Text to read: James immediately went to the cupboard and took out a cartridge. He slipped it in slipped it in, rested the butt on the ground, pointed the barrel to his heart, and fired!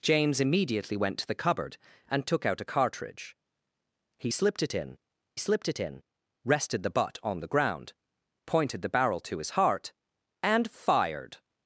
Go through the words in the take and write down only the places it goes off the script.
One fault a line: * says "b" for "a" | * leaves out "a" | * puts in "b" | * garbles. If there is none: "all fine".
all fine